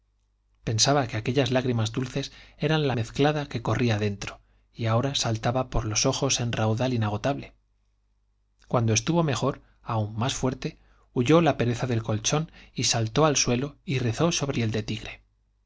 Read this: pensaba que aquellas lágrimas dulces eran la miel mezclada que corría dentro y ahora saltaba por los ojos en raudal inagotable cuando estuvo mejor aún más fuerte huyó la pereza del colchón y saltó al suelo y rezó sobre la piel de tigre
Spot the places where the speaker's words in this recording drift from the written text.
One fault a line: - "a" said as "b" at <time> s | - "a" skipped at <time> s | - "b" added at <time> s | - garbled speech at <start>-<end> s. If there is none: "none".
- "miel" skipped at 3.0 s
- "la" skipped at 14.6 s